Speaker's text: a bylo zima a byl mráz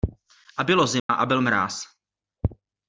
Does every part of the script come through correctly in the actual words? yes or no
yes